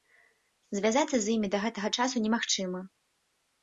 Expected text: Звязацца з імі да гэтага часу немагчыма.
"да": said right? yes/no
yes